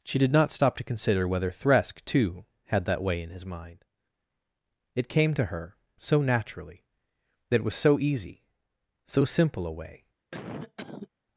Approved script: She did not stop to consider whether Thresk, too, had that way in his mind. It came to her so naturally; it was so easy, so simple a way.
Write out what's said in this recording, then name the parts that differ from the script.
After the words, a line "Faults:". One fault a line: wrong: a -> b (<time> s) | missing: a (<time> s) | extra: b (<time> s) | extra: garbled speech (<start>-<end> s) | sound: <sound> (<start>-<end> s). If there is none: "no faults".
She did not stop to consider whether Thresk, too, had that way in his mind. It came to her so naturally; that it was so easy, so simple a way.
Faults:
extra: that (7.5 s)
sound: cough (10.3-11.1 s)